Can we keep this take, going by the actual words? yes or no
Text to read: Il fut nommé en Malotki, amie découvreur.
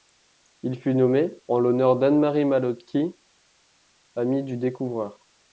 no